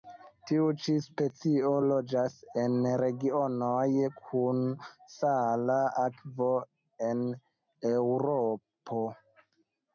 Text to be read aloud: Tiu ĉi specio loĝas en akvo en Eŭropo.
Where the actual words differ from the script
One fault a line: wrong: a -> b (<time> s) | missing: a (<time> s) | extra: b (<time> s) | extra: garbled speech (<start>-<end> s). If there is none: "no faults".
extra: regionoj kun sala (3.0 s)